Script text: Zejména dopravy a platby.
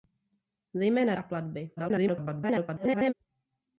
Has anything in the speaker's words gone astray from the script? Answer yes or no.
yes